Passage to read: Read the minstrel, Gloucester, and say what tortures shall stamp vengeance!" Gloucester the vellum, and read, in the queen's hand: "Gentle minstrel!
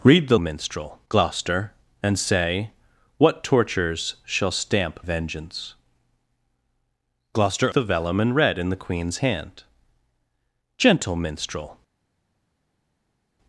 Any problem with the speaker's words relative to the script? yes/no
no